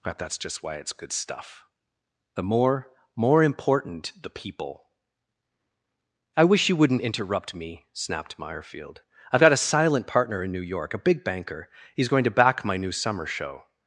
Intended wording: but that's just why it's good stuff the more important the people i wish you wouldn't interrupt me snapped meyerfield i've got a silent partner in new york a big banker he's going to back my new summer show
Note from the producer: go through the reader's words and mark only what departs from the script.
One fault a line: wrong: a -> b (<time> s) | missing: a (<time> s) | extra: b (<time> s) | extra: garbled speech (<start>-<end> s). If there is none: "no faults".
extra: more (3.2 s)